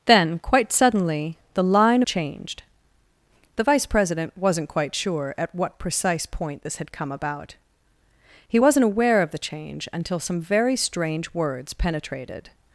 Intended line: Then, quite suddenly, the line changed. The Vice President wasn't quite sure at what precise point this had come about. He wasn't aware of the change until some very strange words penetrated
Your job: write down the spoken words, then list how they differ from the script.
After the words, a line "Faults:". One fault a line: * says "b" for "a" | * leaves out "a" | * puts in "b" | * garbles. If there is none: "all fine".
Then, quite suddenly, the line changed. The Vice President wasn't quite sure at what precise point this had come about. He wasn't aware of the change until some very strange words penetrated
Faults:
all fine